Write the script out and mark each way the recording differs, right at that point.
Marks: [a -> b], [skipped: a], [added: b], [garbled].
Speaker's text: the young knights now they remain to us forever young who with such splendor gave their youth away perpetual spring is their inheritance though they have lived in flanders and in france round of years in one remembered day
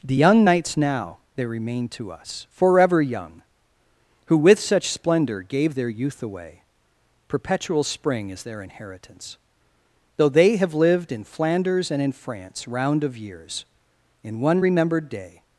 the young knights now they remain to us forever young who with such splendor gave their youth away perpetual spring is their inheritance though they have lived in flanders and in france round of years in one remembered day